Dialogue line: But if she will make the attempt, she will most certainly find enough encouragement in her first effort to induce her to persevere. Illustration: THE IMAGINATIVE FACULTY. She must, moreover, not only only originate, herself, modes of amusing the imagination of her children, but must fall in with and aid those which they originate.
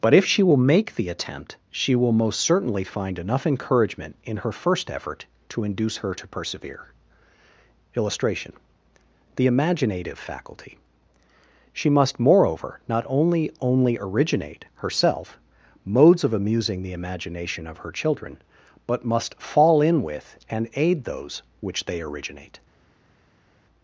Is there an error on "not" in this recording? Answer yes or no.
no